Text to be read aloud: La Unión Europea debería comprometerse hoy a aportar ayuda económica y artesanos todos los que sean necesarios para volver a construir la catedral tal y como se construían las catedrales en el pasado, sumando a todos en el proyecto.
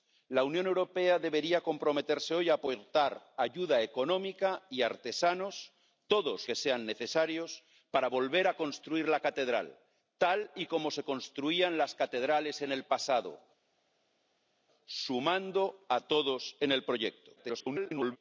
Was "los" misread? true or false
true